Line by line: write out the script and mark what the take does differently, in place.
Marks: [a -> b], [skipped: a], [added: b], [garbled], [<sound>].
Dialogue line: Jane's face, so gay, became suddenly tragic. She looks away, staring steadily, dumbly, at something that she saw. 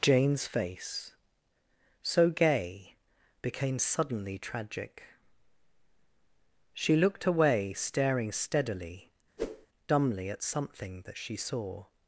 Jane's face, so gay, became suddenly tragic. She [looks -> looked] away, staring steadily, [whoosh] dumbly, at something that she saw.